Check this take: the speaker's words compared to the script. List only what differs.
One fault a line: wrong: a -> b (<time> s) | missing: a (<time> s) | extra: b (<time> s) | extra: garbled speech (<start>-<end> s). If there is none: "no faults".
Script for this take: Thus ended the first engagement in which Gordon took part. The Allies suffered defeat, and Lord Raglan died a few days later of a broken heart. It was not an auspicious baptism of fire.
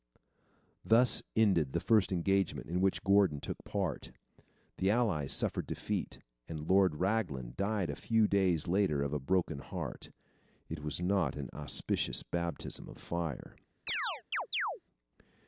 no faults